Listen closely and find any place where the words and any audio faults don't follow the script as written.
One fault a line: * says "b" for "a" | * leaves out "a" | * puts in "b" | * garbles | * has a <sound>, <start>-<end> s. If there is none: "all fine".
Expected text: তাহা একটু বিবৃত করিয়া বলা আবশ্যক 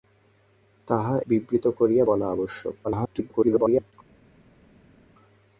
* leaves out "একটু"
* garbles